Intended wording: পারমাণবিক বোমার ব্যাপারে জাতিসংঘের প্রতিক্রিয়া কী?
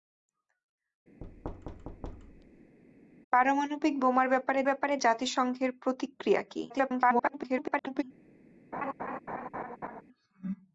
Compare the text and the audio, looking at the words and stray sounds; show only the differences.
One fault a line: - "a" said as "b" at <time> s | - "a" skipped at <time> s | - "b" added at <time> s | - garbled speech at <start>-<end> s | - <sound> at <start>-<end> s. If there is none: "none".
- thud at 1.2-2.8 s
- "ব্যাপারে" added at 4.6 s
- garbled speech at 6.7-8.0 s
- laugh at 8.7-10.0 s